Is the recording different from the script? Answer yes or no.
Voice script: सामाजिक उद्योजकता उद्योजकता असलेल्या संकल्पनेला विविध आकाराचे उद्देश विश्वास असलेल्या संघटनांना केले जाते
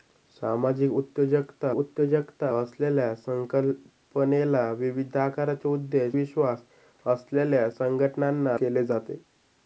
no